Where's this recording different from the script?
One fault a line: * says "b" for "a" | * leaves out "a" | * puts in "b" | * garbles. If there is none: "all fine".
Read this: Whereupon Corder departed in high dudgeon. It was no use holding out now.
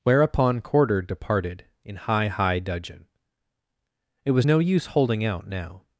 * puts in "high"